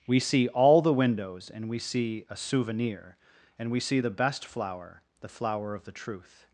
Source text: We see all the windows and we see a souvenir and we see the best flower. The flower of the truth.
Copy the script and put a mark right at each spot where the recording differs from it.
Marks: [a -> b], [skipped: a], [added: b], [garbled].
We see all the windows and we see a souvenir and we see the best flower. The flower of the truth.